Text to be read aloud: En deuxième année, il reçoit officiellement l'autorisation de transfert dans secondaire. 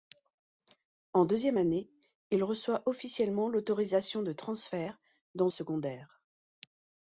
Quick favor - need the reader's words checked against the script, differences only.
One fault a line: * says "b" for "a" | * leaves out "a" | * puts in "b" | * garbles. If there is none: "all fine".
all fine